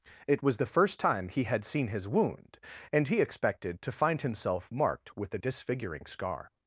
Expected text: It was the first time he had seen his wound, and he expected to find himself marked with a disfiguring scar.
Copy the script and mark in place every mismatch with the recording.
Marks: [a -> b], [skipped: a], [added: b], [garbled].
It was the first time he had seen his wound, and he expected to find himself marked with a disfiguring scar.